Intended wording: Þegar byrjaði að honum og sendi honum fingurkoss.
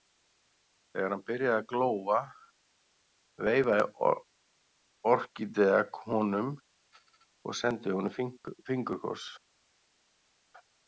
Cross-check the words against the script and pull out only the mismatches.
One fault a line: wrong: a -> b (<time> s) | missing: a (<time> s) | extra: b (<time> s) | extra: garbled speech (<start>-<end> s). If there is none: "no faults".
extra: hann (1.1 s)
extra: glóa veifaði Orkídea (1.7 s)